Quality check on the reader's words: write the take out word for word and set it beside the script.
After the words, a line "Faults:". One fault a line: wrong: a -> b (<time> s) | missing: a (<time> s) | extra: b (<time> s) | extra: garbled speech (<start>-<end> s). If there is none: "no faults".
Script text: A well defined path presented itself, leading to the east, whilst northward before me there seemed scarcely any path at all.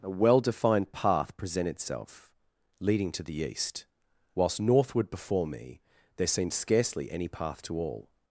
A well defined path present itself, leading to the east, whilst northward before me there seemed scarcely any path to all.
Faults:
wrong: presented -> present (1.4 s)
wrong: at -> to (7.6 s)